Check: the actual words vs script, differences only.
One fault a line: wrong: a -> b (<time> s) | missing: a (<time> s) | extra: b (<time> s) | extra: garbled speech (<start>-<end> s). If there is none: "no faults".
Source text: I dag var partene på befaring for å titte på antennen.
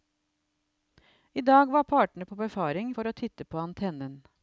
no faults